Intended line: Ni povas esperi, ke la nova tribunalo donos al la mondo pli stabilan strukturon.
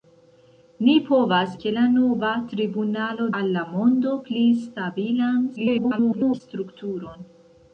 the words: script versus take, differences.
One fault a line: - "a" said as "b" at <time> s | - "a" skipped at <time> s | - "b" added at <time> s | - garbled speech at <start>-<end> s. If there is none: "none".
- "esperi" skipped at 1.5 s
- "donos" skipped at 3.3 s
- garbled speech at 5.6-6.4 s